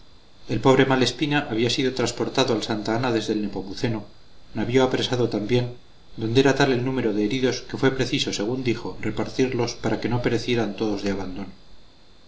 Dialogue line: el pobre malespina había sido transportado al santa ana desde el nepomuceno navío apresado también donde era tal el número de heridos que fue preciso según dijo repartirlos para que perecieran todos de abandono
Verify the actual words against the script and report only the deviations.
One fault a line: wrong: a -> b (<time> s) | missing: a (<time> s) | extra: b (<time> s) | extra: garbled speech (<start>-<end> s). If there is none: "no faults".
extra: no (10.1 s)